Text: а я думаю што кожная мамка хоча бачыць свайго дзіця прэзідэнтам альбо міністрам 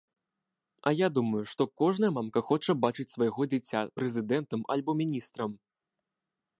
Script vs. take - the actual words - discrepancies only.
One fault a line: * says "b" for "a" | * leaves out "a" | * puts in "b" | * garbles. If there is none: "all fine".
all fine